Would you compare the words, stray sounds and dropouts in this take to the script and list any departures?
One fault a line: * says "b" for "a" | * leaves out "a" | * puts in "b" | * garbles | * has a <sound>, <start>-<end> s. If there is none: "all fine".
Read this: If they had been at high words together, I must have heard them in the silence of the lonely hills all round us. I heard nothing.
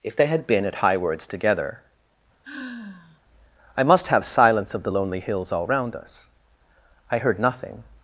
* has a sigh, 2.4-3.2 s
* leaves out "heard them in the"